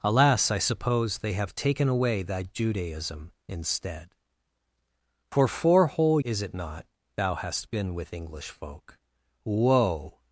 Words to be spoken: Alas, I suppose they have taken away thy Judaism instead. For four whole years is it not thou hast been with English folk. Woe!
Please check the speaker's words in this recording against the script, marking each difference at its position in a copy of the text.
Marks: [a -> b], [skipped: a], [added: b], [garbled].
Alas, I suppose they have taken away thy Judaism instead. For four whole [skipped: years] is it not thou hast been with English folk. Woe!